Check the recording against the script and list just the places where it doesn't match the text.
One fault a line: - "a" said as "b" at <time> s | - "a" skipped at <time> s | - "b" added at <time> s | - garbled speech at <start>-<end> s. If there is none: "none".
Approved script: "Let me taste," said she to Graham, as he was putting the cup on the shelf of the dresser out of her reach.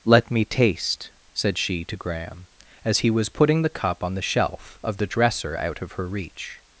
none